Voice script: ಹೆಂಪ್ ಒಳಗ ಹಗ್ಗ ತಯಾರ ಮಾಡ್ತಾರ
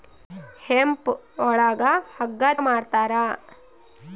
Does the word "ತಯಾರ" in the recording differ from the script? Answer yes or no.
yes